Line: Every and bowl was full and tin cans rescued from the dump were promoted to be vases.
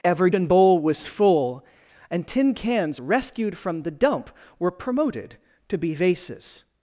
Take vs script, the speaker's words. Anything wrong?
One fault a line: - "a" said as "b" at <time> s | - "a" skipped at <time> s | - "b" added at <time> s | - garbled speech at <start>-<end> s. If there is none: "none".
none